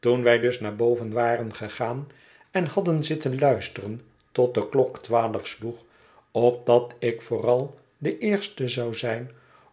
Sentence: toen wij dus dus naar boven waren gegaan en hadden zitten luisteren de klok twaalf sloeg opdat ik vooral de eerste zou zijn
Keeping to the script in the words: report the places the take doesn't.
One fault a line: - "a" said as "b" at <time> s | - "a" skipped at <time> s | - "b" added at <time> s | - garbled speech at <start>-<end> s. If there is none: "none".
- "dus" skipped at 0.6 s
- "tot" added at 4.3 s